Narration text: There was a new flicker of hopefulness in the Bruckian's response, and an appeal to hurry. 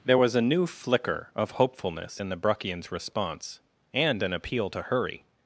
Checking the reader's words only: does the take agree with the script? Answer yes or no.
yes